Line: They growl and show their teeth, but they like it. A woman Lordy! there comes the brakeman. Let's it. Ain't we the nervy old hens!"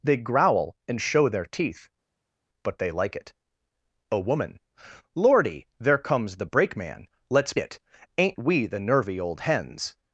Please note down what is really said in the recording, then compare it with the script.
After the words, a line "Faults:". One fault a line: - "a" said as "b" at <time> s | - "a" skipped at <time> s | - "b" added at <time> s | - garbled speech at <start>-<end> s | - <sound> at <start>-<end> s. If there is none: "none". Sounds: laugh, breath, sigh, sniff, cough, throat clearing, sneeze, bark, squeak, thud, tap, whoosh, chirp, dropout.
They growl and show their teeth, but they like it. A woman Lordy! there comes the brakeman. Let's it. Ain't we the nervy old hens!"
Faults:
none